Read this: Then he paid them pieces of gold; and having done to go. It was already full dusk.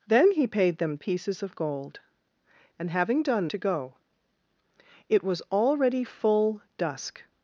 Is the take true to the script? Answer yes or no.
yes